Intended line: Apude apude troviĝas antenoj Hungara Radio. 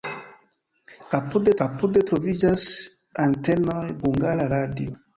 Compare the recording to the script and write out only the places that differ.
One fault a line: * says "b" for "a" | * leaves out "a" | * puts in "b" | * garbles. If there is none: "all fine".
all fine